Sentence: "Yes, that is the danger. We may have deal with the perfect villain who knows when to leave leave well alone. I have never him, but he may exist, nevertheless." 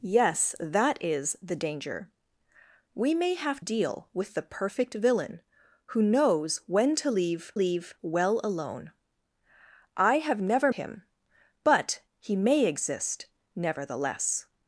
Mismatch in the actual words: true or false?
false